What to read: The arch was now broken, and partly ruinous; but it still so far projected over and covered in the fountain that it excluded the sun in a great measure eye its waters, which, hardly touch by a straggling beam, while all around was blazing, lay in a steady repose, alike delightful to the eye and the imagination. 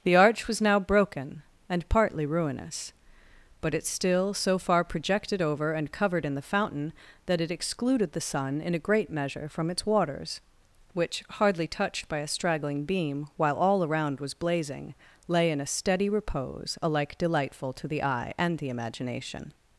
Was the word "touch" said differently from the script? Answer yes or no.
yes